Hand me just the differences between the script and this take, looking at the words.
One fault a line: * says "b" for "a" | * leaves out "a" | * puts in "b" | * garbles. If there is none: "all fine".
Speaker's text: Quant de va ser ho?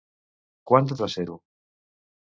all fine